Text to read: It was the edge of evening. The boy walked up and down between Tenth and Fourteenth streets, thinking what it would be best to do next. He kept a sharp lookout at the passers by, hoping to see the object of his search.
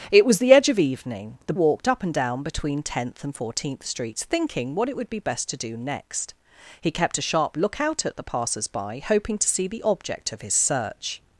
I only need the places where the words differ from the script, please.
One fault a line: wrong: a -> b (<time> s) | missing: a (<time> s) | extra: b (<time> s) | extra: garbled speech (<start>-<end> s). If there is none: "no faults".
missing: boy (1.5 s)